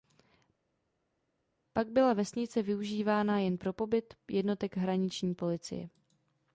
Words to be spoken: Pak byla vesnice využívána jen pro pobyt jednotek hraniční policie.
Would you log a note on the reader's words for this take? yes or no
no